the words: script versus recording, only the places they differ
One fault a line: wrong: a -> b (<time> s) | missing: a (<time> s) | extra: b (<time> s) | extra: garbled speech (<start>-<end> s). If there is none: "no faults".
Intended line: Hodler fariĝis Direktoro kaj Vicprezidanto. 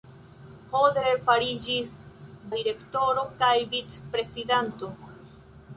no faults